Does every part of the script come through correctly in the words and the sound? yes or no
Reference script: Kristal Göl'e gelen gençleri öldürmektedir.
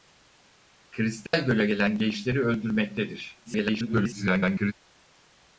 no